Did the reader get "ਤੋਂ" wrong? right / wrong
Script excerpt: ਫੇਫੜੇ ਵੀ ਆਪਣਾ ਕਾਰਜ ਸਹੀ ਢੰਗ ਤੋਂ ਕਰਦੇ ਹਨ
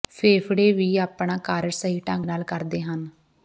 wrong